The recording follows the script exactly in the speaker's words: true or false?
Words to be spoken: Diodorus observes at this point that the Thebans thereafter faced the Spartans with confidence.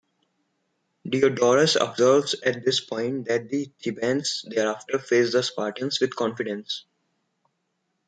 true